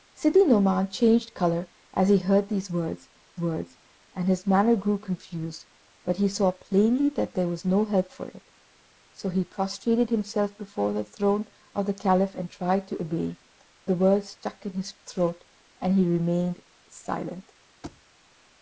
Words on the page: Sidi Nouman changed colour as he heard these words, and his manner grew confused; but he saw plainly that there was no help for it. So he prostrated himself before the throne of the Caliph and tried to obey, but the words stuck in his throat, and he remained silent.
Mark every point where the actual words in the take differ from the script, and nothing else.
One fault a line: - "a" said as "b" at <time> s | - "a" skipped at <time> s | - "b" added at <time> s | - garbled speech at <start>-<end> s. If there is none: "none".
- "words" added at 3.4 s
- "but" skipped at 13.4 s